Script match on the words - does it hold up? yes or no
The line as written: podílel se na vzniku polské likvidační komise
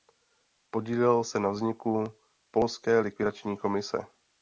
yes